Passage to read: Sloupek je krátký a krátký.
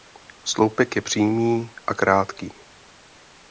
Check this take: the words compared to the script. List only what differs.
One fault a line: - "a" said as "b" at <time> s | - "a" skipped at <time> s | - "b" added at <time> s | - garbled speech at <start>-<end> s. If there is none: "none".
- "krátký" said as "přímý" at 1.0 s